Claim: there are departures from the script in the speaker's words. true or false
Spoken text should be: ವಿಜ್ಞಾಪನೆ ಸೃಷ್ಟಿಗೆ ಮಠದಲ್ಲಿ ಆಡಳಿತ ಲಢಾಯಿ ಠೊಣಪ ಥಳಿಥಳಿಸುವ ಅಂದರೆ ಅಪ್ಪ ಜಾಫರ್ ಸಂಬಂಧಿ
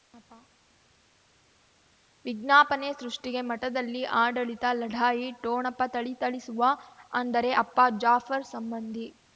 false